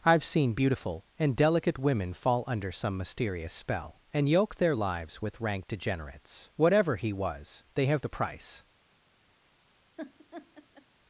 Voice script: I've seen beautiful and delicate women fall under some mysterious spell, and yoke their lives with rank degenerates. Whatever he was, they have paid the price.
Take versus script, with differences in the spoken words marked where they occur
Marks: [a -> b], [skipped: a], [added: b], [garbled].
I've seen beautiful and delicate women fall under some mysterious spell, and yoke their lives with rank degenerates. Whatever he was, they have [skipped: paid] the price.